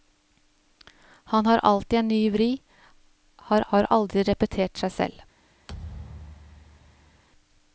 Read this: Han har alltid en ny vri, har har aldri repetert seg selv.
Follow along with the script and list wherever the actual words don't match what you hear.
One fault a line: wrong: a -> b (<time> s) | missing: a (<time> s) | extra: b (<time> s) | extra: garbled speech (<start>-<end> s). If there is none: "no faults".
no faults